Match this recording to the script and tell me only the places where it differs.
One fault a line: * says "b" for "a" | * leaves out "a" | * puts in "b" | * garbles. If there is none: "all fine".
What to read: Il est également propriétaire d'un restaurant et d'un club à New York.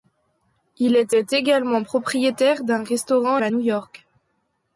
* puts in "est"
* leaves out "et d'un club"